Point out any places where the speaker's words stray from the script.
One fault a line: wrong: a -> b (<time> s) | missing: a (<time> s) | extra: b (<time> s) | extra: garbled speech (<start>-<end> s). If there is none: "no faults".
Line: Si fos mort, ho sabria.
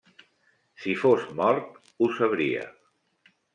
no faults